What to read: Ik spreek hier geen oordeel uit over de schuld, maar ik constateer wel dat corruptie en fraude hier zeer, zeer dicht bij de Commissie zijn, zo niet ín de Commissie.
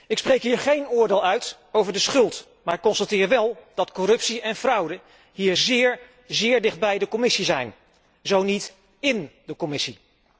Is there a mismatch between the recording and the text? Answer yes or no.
no